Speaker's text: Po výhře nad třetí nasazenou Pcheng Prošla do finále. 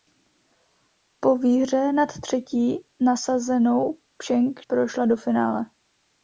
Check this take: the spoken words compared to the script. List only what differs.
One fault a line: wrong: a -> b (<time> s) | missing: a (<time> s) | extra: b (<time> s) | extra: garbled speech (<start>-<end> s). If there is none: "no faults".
no faults